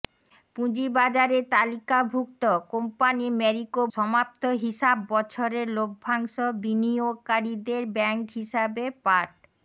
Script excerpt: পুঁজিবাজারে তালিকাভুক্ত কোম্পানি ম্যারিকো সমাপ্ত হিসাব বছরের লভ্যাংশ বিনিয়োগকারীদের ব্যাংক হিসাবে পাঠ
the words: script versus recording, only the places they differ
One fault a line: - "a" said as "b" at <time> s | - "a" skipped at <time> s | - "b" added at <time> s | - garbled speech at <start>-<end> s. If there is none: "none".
none